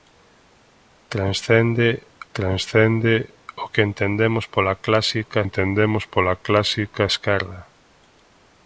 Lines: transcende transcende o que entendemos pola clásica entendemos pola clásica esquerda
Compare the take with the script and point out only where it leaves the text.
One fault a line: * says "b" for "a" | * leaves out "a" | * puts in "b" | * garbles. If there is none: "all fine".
all fine